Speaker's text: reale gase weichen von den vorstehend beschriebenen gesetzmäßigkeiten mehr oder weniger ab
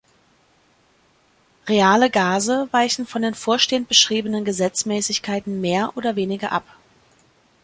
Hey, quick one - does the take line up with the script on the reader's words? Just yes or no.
yes